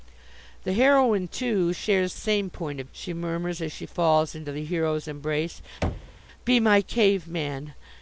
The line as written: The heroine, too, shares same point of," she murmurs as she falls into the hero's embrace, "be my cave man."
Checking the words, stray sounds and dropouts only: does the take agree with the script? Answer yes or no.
no